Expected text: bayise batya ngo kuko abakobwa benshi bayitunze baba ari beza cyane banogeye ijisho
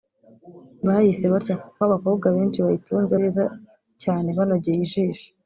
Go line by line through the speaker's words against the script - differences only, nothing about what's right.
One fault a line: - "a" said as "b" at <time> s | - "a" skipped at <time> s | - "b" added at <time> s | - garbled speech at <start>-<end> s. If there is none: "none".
- "ngo kuko" skipped at 1.6 s
- "baba ari" skipped at 3.1 s